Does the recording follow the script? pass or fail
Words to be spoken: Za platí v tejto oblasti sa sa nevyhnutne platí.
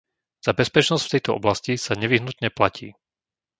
fail